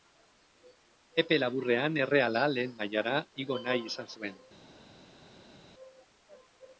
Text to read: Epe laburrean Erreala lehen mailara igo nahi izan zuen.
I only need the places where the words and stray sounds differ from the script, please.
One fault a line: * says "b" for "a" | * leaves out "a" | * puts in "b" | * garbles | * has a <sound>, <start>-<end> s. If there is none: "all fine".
all fine